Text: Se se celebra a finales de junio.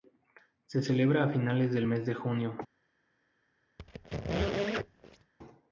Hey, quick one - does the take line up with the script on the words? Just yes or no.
no